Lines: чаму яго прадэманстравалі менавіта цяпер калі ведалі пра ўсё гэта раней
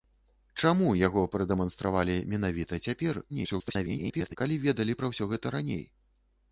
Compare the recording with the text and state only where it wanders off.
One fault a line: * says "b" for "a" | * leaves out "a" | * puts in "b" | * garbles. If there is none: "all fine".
* garbles